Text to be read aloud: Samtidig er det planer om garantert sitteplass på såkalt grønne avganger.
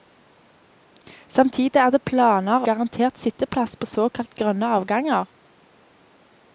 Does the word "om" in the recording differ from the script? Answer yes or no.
yes